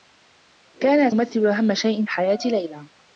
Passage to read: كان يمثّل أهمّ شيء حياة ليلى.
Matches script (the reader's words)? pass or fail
pass